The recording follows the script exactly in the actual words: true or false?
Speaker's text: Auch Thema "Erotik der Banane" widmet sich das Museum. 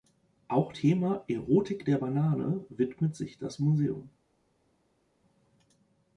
true